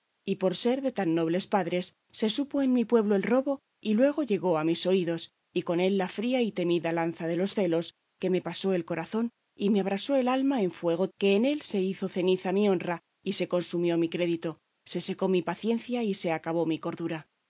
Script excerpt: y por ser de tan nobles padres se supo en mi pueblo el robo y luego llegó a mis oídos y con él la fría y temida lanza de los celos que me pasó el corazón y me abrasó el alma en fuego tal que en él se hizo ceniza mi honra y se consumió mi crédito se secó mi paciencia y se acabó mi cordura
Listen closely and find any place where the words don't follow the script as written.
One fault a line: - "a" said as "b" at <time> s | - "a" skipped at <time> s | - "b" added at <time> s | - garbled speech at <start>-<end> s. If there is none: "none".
- "tal" skipped at 11.1 s